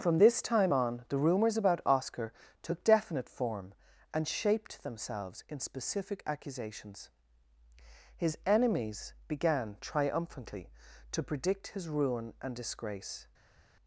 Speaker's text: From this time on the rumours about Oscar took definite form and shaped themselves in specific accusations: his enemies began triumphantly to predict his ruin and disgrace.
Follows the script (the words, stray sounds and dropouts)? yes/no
yes